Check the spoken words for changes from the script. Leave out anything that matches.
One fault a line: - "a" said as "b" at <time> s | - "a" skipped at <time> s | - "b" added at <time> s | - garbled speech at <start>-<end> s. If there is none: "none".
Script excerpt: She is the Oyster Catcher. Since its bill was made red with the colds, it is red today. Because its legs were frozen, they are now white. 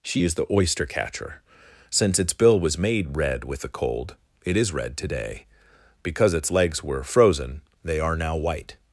- "colds" said as "cold" at 3.7 s